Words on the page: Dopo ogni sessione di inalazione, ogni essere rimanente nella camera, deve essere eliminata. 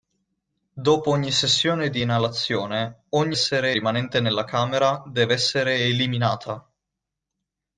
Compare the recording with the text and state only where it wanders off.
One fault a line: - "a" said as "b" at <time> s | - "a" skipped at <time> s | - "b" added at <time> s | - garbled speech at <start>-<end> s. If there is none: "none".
none